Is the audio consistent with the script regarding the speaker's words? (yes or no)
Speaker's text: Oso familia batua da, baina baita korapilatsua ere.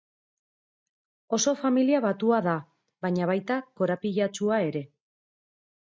yes